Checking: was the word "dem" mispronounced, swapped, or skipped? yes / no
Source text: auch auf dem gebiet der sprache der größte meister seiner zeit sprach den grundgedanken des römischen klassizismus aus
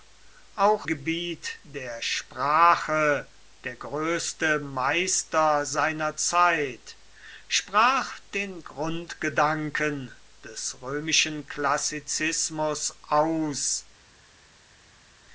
yes